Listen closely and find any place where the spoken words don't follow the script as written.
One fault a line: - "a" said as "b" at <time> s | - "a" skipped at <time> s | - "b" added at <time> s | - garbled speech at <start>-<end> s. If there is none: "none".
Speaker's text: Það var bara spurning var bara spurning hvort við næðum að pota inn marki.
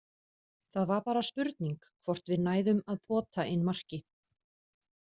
- "var bara spurning" skipped at 1.8 s